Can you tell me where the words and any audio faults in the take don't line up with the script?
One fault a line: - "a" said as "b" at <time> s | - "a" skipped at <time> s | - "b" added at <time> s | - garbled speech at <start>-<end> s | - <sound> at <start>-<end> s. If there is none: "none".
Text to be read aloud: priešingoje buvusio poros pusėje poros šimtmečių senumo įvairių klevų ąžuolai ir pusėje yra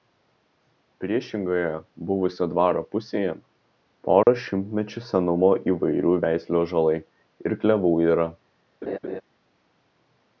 - "poros" said as "dvaro" at 2.5 s
- dropout at 4.2-4.3 s
- "klevų" said as "veislių" at 6.3 s
- "pusėje" said as "klevų" at 7.6 s
- laugh at 8.8-9.2 s